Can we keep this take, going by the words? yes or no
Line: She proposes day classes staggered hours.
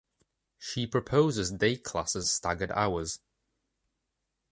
yes